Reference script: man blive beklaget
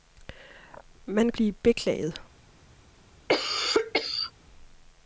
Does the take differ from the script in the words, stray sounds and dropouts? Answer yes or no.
yes